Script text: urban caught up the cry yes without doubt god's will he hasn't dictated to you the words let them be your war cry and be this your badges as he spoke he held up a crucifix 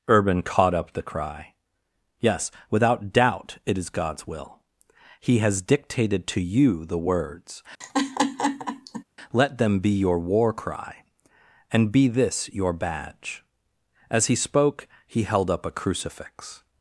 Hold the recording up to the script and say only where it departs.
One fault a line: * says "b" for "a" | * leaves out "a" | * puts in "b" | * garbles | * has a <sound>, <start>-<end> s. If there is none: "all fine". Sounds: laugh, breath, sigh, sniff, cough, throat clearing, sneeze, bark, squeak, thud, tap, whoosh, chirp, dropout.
* puts in "it is"
* says "has" for "hasn't"
* has a laugh, 7.8-9.0 s
* says "badge" for "badges"